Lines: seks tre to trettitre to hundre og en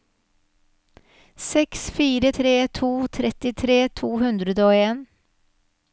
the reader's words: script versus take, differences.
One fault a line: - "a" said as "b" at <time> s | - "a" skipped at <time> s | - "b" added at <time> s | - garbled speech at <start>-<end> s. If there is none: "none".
- "fire" added at 2.0 s